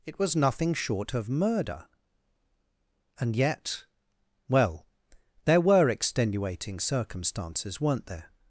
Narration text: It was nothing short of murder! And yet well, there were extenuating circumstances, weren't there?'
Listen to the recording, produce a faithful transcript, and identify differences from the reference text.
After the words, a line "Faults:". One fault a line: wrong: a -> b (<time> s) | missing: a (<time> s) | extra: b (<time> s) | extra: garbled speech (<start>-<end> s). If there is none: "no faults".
It was nothing short of murder! And yet well, there were extenuating circumstances, weren't there?'
Faults:
no faults